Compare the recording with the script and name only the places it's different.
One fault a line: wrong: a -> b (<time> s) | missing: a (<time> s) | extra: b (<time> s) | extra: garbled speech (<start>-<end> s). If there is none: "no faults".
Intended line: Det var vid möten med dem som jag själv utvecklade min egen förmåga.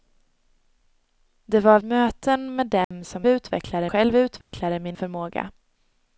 missing: vid (1.8 s)
wrong: jag -> utvecklade (3.3 s)
missing: egen (5.0 s)